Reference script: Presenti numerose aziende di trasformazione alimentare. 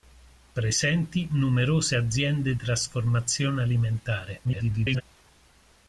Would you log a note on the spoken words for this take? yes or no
yes